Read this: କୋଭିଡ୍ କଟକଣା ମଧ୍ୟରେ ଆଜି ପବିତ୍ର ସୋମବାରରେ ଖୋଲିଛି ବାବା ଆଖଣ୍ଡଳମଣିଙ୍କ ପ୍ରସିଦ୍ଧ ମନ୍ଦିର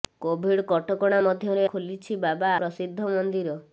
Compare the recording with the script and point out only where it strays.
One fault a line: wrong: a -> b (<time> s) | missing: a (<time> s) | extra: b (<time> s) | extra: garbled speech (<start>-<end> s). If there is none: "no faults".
missing: ଆଜି ପବିତ୍ର ସୋମବାରରେ (1.7 s)
missing: ଆଖଣ୍ଡଳମଣିଙ୍କ (2.6 s)